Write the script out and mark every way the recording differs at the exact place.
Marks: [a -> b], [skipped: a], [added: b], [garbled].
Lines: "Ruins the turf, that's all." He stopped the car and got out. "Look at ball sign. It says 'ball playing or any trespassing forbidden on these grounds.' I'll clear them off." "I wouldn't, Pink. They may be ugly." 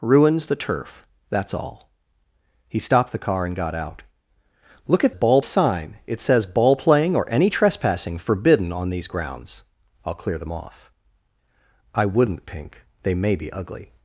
"Ruins the turf, that's all." He stopped the car and got out. "Look at ball sign. It says 'ball playing or any trespassing forbidden on these grounds.' I'll clear them off." "I wouldn't, Pink. They may be ugly."